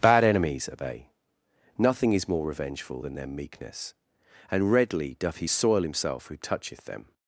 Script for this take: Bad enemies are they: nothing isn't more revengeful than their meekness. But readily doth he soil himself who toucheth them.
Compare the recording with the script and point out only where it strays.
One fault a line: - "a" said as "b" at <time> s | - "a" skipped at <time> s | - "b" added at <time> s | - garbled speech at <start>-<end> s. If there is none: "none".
- "isn't" said as "is" at 2.1 s
- "But" said as "And" at 4.5 s